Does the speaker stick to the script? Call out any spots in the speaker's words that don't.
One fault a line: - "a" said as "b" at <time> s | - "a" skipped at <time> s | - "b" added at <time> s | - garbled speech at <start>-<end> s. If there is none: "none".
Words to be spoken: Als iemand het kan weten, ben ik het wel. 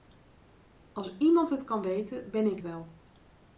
- "het" skipped at 2.6 s